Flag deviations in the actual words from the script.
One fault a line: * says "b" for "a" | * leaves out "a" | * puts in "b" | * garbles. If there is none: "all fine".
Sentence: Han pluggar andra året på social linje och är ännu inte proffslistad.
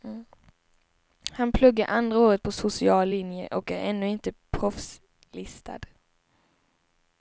all fine